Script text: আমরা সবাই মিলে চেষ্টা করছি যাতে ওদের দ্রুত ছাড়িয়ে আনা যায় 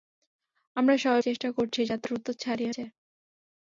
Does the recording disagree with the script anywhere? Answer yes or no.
yes